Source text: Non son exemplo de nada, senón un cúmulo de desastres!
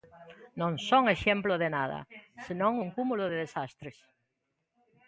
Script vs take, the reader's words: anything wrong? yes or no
no